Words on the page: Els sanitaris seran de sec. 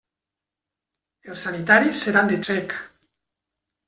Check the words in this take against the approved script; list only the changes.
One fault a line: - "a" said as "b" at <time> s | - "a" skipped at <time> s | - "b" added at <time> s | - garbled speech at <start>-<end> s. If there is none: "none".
none